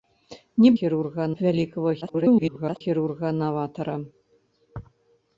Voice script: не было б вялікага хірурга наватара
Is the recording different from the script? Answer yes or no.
yes